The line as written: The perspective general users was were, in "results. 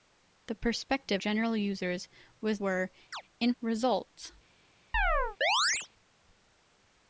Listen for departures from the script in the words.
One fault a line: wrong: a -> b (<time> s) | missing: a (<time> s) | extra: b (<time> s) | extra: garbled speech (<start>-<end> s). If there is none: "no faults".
no faults